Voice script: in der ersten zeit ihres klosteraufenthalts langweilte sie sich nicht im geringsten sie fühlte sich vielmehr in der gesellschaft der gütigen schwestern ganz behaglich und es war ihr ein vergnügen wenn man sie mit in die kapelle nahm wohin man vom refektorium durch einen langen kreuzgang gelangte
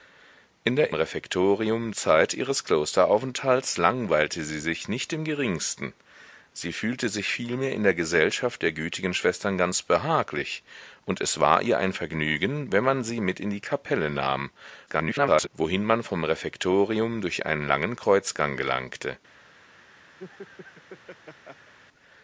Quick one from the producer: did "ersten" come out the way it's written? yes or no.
no